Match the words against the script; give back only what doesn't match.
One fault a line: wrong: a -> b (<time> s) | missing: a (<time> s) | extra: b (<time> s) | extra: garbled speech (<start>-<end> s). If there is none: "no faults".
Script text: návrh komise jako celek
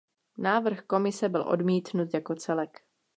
extra: byl odmítnut (1.3 s)